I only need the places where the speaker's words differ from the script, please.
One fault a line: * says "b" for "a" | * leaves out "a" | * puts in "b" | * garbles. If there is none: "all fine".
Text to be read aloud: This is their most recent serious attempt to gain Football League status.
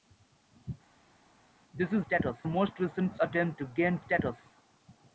* says "status" for "their"
* leaves out "serious"
* leaves out "Football League"